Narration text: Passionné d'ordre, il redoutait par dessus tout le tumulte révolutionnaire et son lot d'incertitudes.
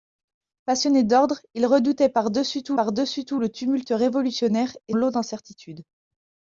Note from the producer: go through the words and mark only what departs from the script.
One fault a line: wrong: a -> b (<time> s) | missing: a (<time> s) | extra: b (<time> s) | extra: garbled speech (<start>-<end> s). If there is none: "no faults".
extra: par dessus tout (2.7 s)
missing: son (4.9 s)